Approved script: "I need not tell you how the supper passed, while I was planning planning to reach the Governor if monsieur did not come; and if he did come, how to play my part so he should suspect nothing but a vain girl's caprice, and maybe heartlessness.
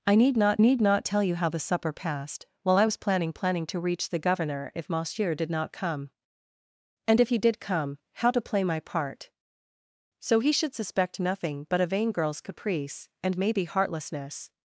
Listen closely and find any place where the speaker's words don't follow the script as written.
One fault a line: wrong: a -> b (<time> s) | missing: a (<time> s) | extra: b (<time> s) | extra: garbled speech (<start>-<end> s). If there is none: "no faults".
extra: need not (0.6 s)